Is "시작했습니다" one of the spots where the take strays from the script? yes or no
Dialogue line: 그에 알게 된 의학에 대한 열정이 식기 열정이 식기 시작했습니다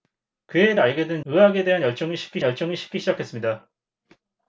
no